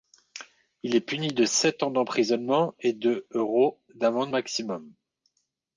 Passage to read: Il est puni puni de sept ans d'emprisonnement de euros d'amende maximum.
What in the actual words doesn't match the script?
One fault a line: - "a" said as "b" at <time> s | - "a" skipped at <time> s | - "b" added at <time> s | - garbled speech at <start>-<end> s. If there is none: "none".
- "puni" skipped at 1.3 s
- "et" added at 2.8 s